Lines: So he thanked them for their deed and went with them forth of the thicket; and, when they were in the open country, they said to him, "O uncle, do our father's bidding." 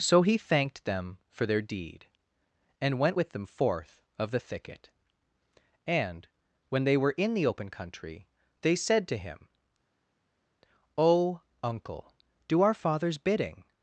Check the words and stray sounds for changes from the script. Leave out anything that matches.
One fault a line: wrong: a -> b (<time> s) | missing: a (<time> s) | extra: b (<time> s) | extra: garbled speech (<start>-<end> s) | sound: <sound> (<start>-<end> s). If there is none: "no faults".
no faults